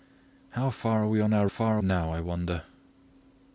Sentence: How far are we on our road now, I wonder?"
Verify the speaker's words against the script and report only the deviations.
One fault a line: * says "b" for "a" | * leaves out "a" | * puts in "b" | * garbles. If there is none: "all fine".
* says "far" for "road"